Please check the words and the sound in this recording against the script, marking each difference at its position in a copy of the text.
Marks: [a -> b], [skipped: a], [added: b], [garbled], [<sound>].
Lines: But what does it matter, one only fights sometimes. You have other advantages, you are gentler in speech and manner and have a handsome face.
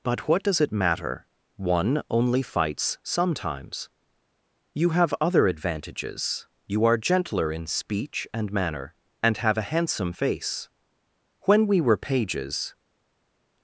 But what does it matter, one only fights sometimes. You have other advantages, you are gentler in speech and manner and have a handsome face. [added: When we were pages]